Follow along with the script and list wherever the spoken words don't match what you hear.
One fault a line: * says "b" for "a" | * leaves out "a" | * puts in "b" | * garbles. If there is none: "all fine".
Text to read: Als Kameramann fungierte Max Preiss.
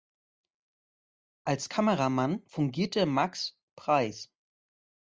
all fine